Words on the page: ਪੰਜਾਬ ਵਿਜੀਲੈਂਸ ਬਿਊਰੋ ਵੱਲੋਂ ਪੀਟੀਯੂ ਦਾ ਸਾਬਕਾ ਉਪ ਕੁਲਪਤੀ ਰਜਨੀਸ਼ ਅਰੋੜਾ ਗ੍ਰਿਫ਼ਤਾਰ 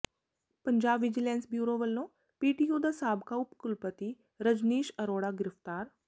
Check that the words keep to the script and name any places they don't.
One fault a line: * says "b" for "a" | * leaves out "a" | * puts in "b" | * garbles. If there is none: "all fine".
all fine